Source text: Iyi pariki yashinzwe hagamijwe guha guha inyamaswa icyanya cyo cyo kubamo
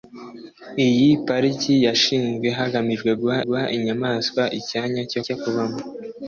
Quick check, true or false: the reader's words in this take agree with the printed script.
true